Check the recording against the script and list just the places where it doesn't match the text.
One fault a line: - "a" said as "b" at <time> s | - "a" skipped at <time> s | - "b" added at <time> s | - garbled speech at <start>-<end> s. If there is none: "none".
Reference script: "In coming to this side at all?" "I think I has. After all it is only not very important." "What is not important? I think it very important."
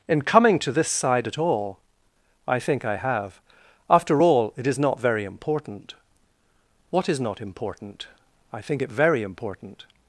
- "has" said as "have" at 3.0 s
- "only" skipped at 4.8 s